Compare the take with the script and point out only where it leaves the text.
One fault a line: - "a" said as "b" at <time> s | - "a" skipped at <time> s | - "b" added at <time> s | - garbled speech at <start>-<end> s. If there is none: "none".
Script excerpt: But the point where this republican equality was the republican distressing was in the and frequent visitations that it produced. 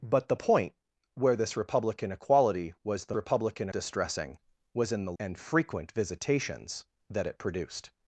none